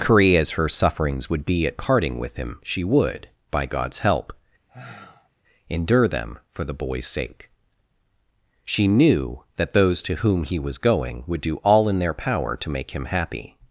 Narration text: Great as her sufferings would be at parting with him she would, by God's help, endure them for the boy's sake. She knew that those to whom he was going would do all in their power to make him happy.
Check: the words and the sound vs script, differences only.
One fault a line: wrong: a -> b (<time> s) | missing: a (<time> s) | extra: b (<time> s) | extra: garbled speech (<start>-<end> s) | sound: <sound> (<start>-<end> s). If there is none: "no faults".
wrong: Great -> Curry (0.0 s)
sound: sigh (4.7-5.3 s)